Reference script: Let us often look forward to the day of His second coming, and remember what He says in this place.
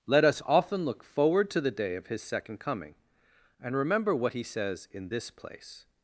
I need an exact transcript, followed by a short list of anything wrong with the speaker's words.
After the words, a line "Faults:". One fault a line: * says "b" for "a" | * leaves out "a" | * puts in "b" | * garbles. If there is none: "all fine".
Let us often look forward to the day of His second coming, and remember what He says in this place.
Faults:
all fine